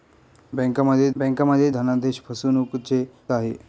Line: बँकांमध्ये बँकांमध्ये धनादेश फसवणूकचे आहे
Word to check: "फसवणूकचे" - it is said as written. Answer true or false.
true